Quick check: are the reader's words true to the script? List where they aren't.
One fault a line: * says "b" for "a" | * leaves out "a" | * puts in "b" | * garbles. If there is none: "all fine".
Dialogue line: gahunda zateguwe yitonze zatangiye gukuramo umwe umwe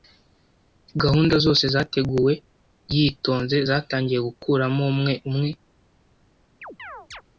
* puts in "zose"